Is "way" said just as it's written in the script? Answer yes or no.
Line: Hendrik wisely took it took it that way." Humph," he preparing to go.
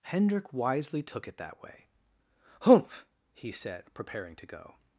yes